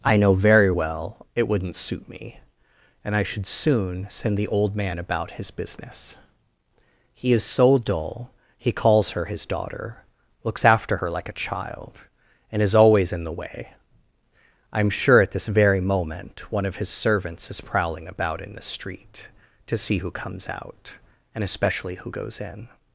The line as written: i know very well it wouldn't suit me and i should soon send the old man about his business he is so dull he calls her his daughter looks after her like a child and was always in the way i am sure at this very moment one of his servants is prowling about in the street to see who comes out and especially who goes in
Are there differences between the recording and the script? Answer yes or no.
yes